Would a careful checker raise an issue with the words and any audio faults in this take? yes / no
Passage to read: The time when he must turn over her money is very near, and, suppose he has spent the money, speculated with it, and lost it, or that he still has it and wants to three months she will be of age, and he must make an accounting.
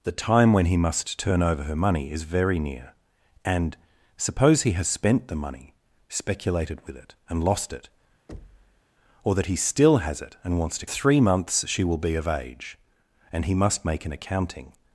yes